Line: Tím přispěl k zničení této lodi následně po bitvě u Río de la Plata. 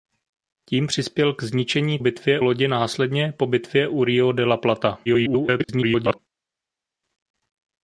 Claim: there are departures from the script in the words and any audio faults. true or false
true